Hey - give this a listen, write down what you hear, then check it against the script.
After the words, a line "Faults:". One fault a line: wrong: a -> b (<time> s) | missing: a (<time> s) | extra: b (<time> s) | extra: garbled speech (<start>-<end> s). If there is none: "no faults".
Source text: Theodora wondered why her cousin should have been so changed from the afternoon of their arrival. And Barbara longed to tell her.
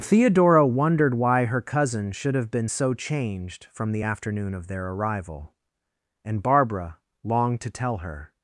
Theodora wondered why her cousin should have been so changed from the afternoon of their arrival. And Barbara longed to tell her.
Faults:
no faults